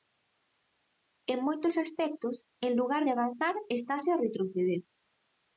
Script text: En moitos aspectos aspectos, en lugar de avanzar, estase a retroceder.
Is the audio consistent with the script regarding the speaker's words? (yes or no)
no